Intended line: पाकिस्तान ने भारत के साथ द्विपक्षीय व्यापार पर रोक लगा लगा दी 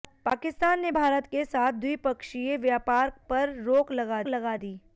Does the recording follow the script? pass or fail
pass